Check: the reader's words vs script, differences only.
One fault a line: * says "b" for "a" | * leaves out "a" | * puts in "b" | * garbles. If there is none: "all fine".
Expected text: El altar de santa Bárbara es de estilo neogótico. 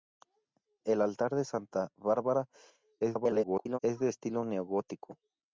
* garbles